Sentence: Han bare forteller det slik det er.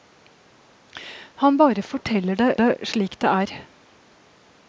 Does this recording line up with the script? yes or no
no